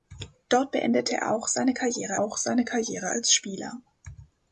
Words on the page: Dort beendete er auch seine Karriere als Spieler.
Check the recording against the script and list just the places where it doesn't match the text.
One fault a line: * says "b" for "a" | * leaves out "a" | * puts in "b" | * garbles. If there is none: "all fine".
* puts in "auch seine Karriere"